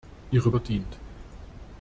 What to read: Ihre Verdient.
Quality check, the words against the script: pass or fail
pass